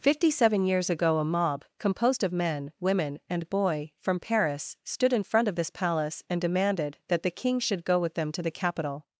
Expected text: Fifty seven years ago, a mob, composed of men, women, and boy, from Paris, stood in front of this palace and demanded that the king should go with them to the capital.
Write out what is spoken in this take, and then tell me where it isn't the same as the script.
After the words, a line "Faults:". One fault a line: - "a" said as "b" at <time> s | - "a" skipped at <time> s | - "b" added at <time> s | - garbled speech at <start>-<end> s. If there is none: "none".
Fifty seven years ago, a mob, composed of men, women, and boy, from Paris, stood in front of this palace and demanded that the king should go with them to the capital.
Faults:
none